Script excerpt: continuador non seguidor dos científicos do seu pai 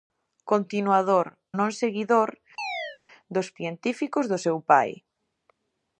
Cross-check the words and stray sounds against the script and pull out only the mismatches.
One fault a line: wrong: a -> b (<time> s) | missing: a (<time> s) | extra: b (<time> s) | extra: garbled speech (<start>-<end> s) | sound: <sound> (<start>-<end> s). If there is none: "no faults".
sound: chirp (2.6-3.0 s)